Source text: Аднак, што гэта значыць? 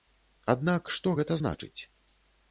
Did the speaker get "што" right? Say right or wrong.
right